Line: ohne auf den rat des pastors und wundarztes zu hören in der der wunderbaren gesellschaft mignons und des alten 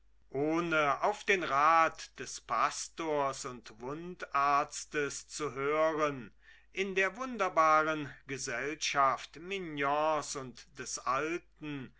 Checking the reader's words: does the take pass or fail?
fail